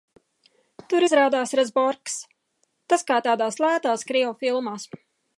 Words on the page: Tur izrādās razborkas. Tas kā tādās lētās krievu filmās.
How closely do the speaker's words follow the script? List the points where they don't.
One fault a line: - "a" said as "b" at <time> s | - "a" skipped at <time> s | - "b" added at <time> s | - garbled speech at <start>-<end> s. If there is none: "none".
none